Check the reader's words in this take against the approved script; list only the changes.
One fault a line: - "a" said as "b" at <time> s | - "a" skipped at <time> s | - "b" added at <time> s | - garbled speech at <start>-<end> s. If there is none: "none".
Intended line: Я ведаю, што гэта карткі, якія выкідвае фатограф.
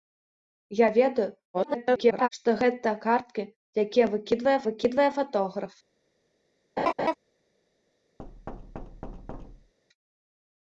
- garbled speech at 1.5-2.3 s
- "выкідвае" added at 4.7 s